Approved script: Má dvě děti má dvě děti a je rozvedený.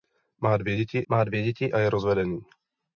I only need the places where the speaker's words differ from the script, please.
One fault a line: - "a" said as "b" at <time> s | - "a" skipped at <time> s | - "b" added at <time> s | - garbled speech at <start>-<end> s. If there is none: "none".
none